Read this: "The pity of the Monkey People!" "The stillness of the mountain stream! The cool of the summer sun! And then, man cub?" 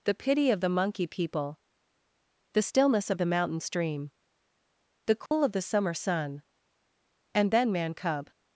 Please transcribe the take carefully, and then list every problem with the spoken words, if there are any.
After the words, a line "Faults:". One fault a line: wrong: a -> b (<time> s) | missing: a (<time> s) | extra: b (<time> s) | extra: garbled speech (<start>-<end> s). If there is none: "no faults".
"The pity of the Monkey People!" "The stillness of the mountain stream! The cool of the summer sun! And then, man cub?"
Faults:
no faults